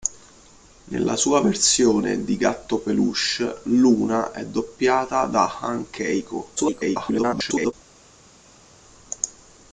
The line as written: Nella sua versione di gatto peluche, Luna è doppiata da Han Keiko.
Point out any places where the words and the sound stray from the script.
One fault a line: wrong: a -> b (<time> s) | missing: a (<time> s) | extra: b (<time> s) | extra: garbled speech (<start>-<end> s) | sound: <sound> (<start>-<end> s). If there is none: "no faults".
extra: garbled speech (6.6-7.7 s)